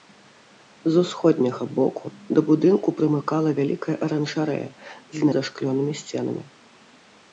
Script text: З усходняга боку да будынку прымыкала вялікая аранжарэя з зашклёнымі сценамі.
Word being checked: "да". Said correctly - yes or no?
yes